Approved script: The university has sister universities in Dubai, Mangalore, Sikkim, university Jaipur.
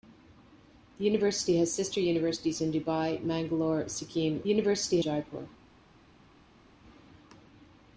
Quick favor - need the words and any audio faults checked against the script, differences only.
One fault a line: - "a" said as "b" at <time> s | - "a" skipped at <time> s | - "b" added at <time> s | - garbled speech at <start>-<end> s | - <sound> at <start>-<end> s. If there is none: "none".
none